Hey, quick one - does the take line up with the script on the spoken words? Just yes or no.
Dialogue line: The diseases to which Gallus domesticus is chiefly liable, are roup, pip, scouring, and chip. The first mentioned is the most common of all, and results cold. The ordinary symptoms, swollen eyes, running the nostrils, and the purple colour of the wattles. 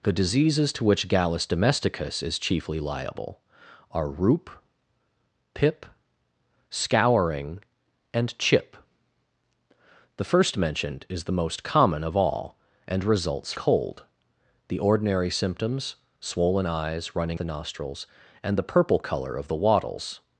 yes